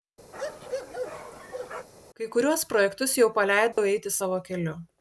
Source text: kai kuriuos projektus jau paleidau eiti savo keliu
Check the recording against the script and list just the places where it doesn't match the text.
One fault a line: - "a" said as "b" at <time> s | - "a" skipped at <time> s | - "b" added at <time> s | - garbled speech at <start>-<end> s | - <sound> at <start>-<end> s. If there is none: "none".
- bark at 0.3-1.9 s
- dropout at 3.7-3.8 s